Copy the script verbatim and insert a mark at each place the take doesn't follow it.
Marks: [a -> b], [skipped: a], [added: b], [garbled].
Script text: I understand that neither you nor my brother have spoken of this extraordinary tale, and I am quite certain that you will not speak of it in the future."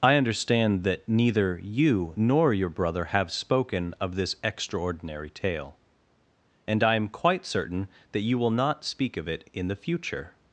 I understand that neither you nor [my -> your] brother have spoken of this extraordinary tale, and I am quite certain that you will not speak of it in the future."